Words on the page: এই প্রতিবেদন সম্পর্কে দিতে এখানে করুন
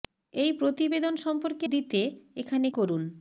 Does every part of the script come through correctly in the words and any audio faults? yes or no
yes